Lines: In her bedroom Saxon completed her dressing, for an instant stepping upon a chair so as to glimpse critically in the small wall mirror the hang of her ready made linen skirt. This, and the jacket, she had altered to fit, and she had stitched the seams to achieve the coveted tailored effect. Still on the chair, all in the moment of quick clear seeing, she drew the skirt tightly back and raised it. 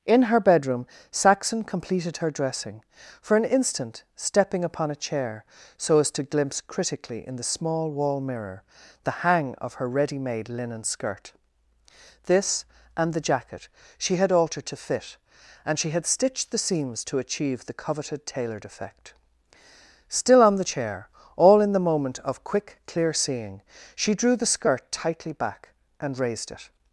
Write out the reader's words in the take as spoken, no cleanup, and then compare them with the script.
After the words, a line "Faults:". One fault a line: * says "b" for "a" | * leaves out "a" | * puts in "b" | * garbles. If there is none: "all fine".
In her bedroom Saxon completed her dressing, for an instant stepping upon a chair so as to glimpse critically in the small wall mirror the hang of her ready made linen skirt. This, and the jacket, she had altered to fit, and she had stitched the seams to achieve the coveted tailored effect. Still on the chair, all in the moment of quick clear seeing, she drew the skirt tightly back and raised it.
Faults:
all fine